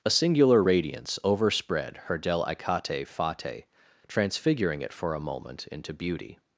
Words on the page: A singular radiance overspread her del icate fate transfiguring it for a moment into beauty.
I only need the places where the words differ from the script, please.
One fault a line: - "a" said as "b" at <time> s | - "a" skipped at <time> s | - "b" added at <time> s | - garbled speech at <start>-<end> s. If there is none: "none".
none